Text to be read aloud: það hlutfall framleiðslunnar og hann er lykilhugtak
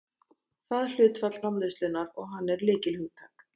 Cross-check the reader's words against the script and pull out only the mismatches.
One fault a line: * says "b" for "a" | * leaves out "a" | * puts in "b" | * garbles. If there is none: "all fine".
all fine